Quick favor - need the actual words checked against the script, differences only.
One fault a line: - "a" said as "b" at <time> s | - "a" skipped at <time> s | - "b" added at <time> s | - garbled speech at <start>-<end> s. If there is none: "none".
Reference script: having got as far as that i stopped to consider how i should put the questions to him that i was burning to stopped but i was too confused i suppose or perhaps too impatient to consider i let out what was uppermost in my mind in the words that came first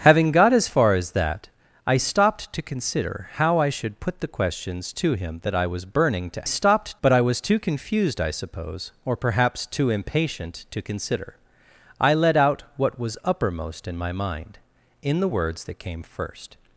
none